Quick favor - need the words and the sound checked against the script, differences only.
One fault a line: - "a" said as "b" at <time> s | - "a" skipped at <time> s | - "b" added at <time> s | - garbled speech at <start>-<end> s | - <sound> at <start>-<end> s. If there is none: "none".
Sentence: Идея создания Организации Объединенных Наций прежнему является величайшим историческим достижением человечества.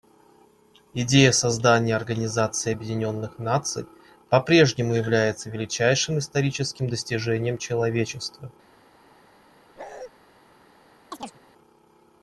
- "по" added at 4.3 s
- bark at 9.8-10.1 s
- chirp at 11.1-11.4 s